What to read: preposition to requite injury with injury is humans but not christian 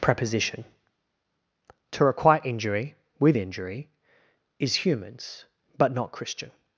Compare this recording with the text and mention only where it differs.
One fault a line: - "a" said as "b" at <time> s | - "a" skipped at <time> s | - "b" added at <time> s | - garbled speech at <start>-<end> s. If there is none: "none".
none